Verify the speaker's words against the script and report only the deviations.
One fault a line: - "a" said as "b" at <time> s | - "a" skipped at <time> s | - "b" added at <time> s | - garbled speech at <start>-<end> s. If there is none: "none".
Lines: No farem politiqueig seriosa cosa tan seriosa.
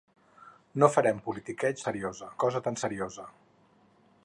none